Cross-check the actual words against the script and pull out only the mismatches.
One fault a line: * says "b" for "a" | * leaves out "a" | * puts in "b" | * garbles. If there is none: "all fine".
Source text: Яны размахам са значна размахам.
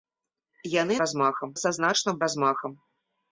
all fine